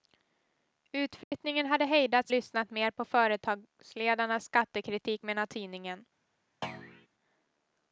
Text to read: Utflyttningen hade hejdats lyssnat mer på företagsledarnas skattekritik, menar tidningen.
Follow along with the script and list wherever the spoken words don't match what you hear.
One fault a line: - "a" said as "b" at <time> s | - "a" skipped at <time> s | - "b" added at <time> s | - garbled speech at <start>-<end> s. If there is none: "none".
none